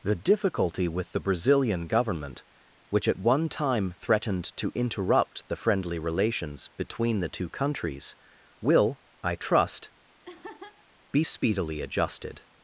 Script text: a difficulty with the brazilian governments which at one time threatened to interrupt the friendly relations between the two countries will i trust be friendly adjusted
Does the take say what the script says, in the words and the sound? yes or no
no